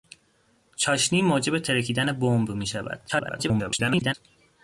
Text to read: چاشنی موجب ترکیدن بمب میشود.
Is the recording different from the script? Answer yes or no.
yes